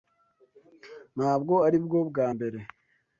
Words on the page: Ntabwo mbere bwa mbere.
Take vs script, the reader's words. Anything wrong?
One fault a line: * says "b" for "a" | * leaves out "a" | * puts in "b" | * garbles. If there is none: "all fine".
* says "aribwo" for "mbere"